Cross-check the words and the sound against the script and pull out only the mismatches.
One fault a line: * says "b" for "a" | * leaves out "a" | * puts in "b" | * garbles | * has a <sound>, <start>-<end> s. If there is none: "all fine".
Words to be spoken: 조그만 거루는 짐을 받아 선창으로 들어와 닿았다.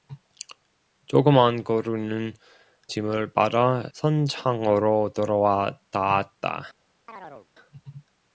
* has a chirp, 7.1-7.5 s